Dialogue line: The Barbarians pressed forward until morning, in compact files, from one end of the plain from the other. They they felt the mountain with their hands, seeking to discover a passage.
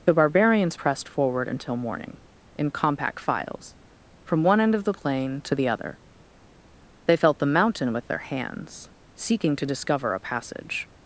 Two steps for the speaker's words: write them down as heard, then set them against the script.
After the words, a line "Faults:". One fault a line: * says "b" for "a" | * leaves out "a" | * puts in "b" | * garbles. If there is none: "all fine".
The Barbarians pressed forward until morning, in compact files, from one end of the plain to the other. They felt the mountain with their hands, seeking to discover a passage.
Faults:
* says "to" for "from"
* leaves out "they"